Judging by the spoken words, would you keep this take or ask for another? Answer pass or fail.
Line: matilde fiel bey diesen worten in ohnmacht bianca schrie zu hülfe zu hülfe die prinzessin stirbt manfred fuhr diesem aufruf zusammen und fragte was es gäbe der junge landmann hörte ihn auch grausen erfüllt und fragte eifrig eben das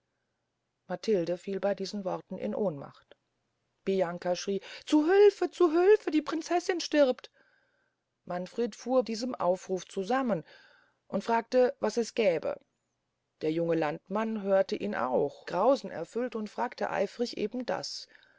pass